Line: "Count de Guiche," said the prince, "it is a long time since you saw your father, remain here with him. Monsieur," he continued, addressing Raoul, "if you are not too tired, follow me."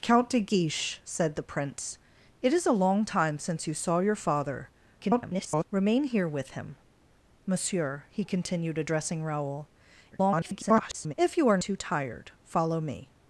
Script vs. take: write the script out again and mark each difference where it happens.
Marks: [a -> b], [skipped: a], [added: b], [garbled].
"Count de Guiche," said the prince, "it is a long time since you saw your father, [garbled] remain here with him. Monsieur," he continued, addressing Raoul, [garbled] "if you are [skipped: not] too tired, follow me."